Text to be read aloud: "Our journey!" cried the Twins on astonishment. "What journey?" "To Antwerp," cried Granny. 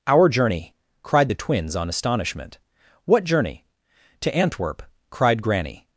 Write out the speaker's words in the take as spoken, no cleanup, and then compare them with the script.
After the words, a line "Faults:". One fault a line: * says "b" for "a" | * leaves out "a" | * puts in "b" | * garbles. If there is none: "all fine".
"Our journey!" cried the Twins on astonishment. "What journey?" "To Antwerp," cried Granny.
Faults:
all fine